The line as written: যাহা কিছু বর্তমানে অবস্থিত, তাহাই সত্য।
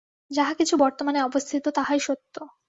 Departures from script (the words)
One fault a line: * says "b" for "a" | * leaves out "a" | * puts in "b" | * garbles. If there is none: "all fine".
all fine